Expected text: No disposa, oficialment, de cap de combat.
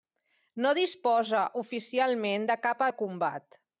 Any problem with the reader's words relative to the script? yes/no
no